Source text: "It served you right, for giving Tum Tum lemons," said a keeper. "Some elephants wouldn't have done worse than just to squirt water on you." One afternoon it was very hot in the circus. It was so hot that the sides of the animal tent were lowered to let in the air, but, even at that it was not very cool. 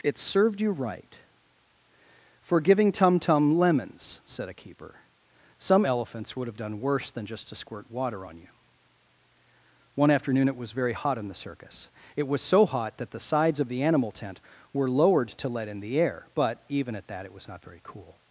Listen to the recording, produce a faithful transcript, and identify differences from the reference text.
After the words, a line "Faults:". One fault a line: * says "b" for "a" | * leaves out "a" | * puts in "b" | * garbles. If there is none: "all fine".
"It served you right, for giving Tum Tum lemons," said a keeper. "Some elephants would have done worse than just to squirt water on you." One afternoon it was very hot in the circus. It was so hot that the sides of the animal tent were lowered to let in the air, but, even at that it was not very cool.
Faults:
* says "would" for "wouldn't"